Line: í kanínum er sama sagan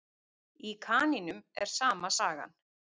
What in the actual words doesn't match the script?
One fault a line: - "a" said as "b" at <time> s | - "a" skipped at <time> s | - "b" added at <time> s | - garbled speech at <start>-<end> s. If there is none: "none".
none